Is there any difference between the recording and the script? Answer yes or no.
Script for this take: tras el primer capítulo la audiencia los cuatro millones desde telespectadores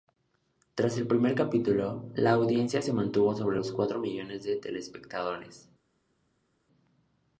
yes